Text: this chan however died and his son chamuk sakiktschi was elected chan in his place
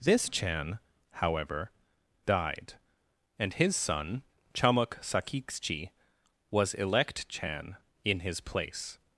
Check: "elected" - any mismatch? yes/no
yes